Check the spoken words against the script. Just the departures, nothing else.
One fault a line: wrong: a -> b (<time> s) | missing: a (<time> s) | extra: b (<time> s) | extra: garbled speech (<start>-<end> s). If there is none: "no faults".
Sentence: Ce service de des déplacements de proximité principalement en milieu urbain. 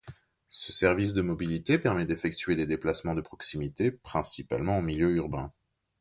extra: mobilité permet d'effectuer (1.2 s)